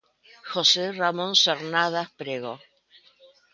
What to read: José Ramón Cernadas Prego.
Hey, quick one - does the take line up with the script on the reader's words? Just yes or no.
yes